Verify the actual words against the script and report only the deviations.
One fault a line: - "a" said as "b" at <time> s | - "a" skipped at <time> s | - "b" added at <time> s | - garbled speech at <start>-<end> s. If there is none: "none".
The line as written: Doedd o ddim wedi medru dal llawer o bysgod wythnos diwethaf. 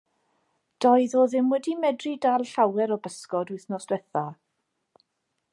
none